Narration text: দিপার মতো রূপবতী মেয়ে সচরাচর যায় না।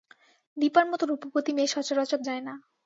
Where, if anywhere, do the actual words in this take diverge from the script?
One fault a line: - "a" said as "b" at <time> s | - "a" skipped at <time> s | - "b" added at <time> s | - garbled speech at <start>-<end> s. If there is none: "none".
none